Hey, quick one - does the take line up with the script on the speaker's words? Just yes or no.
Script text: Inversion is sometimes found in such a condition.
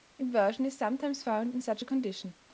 yes